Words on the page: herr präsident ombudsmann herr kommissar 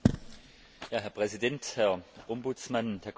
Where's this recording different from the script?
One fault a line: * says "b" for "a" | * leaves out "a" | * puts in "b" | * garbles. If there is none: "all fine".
* puts in "herr"